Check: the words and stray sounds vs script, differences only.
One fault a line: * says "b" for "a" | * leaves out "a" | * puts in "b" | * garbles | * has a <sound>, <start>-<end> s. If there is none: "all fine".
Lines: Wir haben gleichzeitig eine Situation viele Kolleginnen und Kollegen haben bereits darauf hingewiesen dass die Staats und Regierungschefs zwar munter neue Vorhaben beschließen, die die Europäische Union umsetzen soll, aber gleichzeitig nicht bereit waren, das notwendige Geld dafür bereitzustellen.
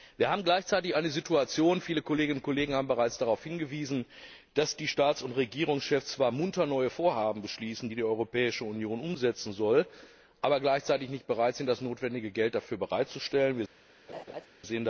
* says "sind" for "waren"
* has a laugh, 14.1-14.5 s